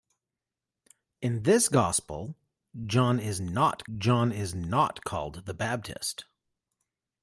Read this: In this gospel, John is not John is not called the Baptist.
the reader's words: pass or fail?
pass